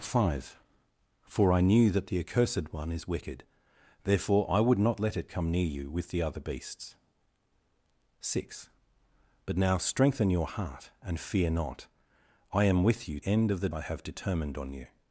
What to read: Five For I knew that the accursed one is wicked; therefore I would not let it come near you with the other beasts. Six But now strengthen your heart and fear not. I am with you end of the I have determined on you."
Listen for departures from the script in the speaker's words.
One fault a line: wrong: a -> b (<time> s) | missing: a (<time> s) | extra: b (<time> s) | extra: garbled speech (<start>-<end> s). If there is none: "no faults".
no faults